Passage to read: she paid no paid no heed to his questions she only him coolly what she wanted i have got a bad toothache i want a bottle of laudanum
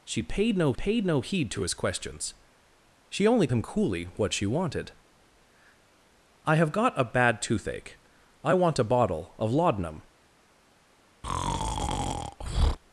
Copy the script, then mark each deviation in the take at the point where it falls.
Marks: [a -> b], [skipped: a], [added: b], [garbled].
she paid no paid no heed to his questions she only him coolly what she wanted i have got a bad toothache i want a bottle of laudanum